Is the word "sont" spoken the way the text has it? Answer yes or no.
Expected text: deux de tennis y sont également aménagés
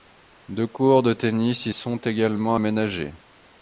yes